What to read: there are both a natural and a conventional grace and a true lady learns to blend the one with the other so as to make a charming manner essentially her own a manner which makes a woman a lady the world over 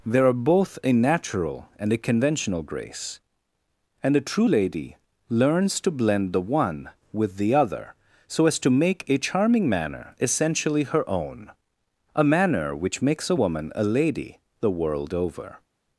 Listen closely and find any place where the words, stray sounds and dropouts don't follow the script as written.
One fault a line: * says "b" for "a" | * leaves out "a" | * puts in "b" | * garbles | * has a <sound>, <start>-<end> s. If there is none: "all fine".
all fine